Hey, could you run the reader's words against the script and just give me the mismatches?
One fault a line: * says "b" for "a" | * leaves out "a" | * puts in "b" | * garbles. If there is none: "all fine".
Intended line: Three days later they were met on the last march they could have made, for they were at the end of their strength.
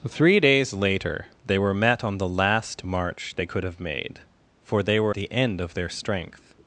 * leaves out "at"